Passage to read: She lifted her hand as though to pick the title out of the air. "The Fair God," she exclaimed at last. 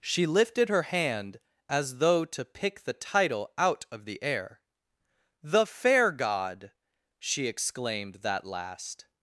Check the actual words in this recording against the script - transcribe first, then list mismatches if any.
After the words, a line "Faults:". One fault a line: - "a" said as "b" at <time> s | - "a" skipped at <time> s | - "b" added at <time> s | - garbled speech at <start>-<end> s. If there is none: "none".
She lifted her hand as though to pick the title out of the air. "The Fair God," she exclaimed that last.
Faults:
- "at" said as "that" at 8.2 s